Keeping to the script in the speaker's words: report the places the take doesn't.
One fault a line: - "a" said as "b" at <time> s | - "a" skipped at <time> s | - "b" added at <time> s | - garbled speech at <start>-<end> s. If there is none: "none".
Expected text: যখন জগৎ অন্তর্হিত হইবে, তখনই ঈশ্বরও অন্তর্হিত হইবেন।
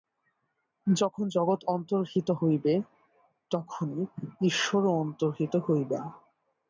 none